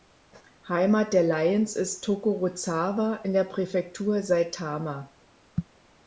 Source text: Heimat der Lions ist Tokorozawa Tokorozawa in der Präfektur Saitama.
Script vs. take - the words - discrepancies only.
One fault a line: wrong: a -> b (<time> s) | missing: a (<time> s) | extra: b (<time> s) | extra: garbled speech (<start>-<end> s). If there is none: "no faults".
missing: Tokorozawa (3.2 s)